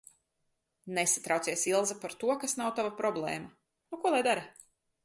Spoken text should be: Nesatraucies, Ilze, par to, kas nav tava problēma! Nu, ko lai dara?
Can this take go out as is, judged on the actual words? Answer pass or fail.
pass